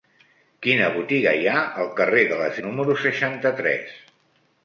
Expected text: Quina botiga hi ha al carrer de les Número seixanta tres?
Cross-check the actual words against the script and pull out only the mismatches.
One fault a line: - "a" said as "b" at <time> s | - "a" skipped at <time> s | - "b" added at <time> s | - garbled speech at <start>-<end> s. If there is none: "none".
none